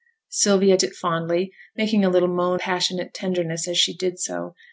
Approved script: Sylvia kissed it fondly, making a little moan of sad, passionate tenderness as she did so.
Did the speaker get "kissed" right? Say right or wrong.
wrong